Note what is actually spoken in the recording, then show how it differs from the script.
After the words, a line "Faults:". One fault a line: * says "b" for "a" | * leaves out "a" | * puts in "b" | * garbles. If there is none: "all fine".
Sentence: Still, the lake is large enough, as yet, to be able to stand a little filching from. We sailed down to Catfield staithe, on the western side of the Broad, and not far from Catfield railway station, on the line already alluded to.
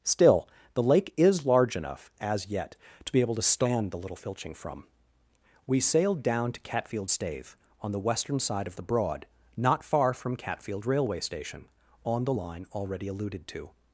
Still, the lake is large enough, as yet, to be able to stand the little filching from. We sailed down to Catfield staithe, on the western side of the Broad, not far from Catfield railway station, on the line already alluded to.
Faults:
* says "the" for "a"
* leaves out "and"